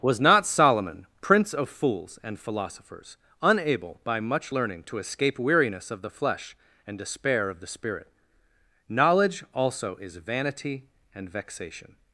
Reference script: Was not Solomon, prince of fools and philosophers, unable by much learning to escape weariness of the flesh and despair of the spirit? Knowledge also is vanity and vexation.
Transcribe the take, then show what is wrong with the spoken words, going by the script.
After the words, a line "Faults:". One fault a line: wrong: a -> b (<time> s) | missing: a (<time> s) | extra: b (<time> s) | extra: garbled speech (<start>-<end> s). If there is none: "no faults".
Was not Solomon, prince of fools and philosophers, unable by much learning to escape weariness of the flesh and despair of the spirit? Knowledge also is vanity and vexation.
Faults:
no faults